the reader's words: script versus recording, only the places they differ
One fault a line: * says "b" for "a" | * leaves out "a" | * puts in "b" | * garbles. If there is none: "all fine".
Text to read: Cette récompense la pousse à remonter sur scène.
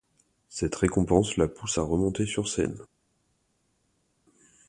all fine